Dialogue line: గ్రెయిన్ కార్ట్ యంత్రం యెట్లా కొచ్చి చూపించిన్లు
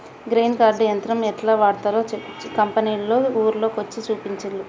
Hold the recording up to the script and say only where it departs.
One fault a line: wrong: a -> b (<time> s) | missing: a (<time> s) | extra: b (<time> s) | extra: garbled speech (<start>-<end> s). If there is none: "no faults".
extra: వాడ్తరో కంపెనోళ్లు ఊర్ల (1.6 s)